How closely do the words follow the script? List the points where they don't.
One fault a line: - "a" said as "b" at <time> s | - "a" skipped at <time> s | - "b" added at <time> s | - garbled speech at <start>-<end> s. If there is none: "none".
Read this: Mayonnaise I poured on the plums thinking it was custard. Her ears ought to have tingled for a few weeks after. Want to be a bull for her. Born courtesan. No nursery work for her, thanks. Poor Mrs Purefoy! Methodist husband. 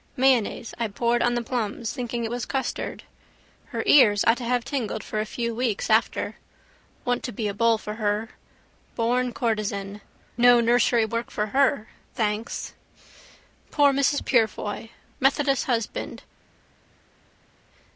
none